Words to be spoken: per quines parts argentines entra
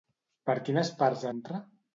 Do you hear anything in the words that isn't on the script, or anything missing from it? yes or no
yes